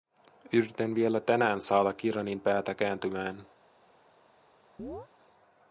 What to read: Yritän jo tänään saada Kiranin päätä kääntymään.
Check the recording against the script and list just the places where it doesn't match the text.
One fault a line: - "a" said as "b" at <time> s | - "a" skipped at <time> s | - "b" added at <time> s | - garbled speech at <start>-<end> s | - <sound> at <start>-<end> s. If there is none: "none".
- "jo" said as "vielä" at 0.9 s
- chirp at 4.8-5.1 s